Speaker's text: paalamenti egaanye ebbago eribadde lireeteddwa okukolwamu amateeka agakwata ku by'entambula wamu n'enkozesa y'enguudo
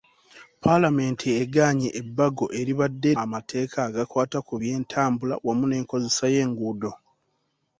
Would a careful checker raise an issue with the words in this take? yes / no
yes